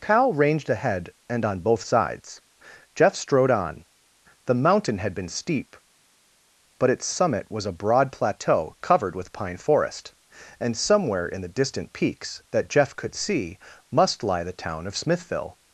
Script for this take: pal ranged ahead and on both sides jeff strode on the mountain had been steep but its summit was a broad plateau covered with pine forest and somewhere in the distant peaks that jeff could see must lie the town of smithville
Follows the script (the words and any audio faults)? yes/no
no